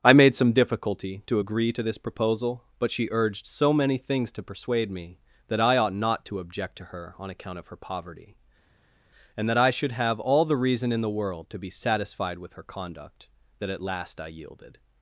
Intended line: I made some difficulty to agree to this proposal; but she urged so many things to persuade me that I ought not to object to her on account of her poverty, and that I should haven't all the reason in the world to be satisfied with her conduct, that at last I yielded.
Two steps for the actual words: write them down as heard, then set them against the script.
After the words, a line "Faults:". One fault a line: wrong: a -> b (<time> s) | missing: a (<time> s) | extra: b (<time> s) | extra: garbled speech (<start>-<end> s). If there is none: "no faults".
I made some difficulty to agree to this proposal; but she urged so many things to persuade me that I ought not to object to her on account of her poverty, and that I should have all the reason in the world to be satisfied with her conduct, that at last I yielded.
Faults:
wrong: haven't -> have (9.9 s)